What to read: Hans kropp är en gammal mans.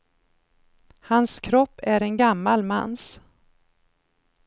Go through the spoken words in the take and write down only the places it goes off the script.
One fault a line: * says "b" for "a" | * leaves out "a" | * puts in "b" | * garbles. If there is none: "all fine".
all fine